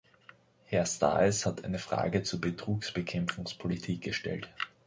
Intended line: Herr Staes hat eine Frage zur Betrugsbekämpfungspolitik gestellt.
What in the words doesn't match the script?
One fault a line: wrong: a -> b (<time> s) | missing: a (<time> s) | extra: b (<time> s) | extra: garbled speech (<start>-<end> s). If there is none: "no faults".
no faults